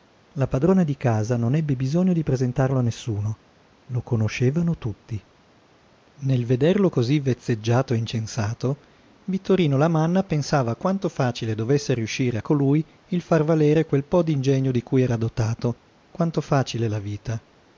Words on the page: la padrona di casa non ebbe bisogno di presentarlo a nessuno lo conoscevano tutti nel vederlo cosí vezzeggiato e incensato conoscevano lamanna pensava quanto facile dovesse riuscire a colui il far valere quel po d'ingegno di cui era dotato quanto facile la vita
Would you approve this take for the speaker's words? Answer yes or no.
no